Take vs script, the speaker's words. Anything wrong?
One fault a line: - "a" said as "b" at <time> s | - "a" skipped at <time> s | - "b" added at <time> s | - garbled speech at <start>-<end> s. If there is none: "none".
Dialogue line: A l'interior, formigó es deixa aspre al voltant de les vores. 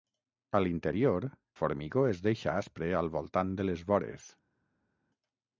none